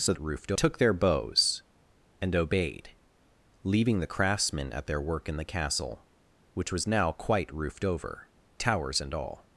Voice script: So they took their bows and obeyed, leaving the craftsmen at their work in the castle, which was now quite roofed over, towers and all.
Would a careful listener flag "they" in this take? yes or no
yes